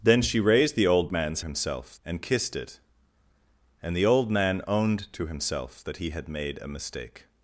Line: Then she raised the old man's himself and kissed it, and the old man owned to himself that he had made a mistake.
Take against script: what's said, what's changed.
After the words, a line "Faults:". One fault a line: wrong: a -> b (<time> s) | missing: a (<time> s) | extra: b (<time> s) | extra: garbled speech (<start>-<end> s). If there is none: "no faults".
Then she raised the old man's himself and kissed it, and the old man owned to himself that he had made a mistake.
Faults:
no faults